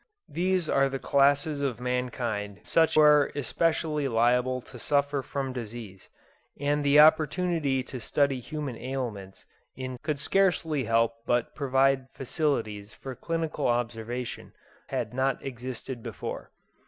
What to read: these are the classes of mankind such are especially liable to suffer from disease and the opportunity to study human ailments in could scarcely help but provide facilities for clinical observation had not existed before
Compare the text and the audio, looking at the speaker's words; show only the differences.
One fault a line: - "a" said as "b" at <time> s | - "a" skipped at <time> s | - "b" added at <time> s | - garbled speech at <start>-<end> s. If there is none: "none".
none